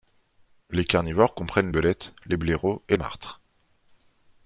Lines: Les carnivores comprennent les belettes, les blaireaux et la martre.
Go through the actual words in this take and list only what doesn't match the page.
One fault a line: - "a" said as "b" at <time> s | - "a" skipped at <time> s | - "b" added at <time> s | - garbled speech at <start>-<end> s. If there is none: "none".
- "les" skipped at 1.7 s
- "la" skipped at 2.9 s